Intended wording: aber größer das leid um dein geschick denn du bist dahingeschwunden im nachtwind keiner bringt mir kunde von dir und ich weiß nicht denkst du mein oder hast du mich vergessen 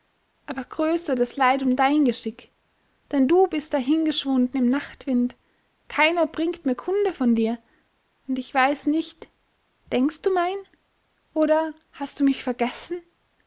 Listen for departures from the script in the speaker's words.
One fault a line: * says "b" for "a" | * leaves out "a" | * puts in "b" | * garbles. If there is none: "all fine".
all fine